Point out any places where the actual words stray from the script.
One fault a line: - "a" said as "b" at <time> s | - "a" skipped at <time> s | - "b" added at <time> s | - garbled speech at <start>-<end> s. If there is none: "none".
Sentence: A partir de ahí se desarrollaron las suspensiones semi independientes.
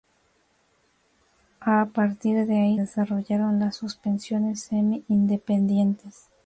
- "se" skipped at 2.8 s